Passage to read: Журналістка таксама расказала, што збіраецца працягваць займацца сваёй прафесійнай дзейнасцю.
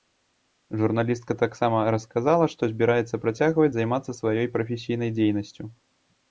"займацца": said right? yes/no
yes